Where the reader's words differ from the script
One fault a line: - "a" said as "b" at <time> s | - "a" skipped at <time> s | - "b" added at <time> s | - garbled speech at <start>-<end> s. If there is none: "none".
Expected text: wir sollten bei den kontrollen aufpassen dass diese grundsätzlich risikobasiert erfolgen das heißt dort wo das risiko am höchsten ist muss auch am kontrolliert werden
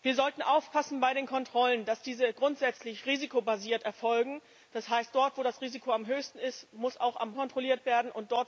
none